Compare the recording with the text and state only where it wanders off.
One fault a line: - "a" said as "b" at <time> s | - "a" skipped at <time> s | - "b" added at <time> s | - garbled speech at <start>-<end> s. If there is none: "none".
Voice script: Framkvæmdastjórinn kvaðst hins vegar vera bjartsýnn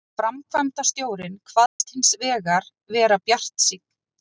none